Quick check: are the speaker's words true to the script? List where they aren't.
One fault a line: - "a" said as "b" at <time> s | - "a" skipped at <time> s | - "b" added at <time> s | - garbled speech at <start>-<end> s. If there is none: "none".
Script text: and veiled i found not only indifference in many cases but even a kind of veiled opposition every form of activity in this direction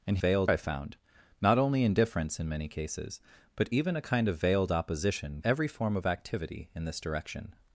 none